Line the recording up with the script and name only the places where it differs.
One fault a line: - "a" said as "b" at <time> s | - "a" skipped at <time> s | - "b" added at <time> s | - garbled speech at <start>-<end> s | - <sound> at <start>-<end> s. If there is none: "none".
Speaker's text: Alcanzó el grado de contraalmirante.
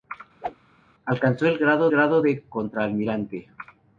- whoosh at 0.4-0.6 s
- "grado" added at 1.9 s